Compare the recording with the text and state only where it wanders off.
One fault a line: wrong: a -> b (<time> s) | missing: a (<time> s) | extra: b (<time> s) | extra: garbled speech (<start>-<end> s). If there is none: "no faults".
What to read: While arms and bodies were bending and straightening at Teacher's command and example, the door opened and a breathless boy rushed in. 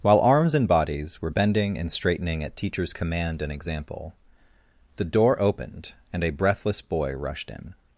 no faults